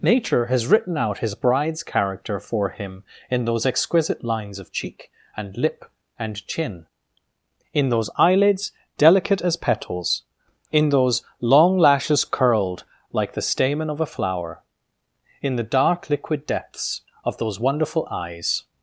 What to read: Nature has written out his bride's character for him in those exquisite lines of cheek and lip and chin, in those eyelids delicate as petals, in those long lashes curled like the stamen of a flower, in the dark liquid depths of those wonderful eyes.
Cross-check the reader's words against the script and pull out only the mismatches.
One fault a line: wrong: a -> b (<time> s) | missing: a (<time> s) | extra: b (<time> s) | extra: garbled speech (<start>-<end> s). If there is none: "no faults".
no faults